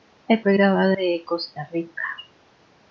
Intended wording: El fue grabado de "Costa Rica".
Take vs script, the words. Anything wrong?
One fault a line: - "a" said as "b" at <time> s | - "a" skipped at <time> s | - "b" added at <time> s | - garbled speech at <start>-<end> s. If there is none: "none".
none